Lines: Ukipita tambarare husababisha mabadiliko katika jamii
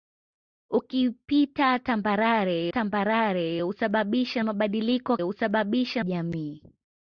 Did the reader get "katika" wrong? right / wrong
wrong